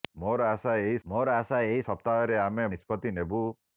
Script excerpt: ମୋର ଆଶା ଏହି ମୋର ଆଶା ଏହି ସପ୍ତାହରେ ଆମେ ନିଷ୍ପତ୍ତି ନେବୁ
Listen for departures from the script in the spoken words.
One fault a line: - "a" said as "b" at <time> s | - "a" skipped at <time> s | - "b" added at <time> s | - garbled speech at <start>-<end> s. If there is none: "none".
none